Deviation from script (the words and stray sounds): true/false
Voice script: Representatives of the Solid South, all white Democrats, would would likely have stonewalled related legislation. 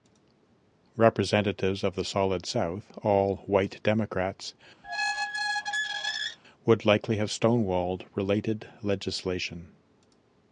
true